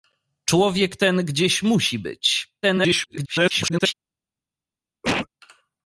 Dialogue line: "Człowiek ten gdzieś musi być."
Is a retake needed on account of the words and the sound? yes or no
yes